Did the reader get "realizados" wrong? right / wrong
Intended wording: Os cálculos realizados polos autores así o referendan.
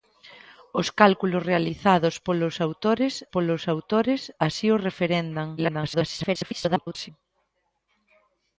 right